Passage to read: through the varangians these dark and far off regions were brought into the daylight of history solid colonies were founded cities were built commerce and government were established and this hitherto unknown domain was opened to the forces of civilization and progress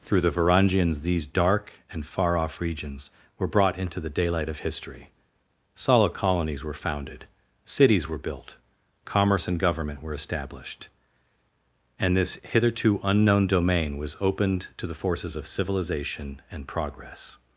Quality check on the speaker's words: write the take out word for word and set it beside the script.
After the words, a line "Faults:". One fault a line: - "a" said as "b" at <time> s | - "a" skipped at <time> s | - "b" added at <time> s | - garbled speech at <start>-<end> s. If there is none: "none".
through the varangians these dark and far off regions were brought into the daylight of history solid colonies were founded cities were built commerce and government were established and this hitherto unknown domain was opened to the forces of civilization and progress
Faults:
none